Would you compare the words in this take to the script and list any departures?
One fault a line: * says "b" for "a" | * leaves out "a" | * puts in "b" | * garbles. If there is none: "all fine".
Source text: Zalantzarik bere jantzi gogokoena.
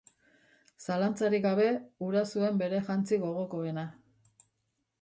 * puts in "gabe hura zuen"